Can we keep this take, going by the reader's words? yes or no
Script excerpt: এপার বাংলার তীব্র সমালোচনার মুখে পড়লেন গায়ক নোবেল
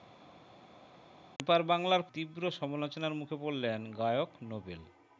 yes